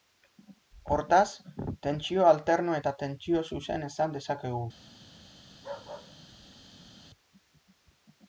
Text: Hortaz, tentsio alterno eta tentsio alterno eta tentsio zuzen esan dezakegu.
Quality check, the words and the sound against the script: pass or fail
fail